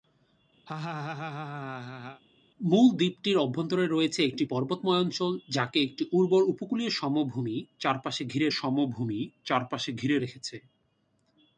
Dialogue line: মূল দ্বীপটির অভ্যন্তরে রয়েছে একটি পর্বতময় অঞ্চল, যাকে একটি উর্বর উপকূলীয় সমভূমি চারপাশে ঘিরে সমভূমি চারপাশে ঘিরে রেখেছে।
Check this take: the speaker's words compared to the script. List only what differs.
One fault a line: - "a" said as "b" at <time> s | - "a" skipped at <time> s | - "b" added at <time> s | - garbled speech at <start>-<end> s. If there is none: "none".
none